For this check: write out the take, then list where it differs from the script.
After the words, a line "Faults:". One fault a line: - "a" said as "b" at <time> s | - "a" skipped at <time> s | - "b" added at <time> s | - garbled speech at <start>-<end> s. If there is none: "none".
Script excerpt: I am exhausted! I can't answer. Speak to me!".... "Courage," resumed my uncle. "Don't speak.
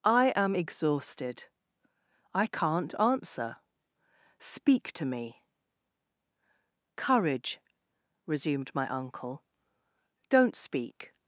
I am exhausted! I can't answer. Speak to me!".... "Courage," resumed my uncle. "Don't speak.
Faults:
none